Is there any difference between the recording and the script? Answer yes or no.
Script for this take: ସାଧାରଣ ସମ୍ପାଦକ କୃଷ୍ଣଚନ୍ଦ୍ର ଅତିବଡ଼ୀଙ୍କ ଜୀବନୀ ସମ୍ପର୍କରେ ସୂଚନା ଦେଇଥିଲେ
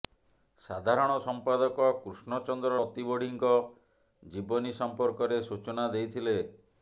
no